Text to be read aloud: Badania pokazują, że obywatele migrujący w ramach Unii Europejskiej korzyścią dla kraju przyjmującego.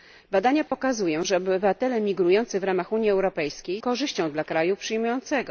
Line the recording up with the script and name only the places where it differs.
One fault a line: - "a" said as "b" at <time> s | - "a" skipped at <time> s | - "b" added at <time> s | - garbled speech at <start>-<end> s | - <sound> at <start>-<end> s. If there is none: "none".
- dropout at 0.7-0.7 s